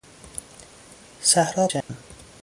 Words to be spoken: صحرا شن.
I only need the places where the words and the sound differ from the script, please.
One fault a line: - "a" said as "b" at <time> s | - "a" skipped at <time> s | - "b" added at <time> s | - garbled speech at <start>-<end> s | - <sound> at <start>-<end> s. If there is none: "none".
- dropout at 1.8-1.9 s